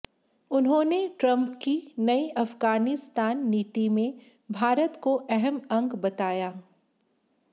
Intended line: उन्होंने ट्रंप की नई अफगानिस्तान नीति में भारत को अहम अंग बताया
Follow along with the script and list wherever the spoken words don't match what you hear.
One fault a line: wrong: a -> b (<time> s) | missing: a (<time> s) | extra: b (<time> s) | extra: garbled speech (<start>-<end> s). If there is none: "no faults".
no faults